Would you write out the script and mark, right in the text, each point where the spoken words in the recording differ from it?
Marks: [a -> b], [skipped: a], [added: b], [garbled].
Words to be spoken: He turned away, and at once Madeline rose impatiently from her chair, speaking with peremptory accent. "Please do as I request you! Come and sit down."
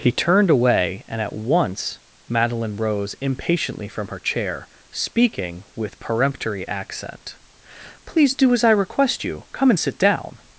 He turned away, and at once Madeline rose impatiently from her chair, speaking with peremptory accent. "Please do as I request you! Come and sit down."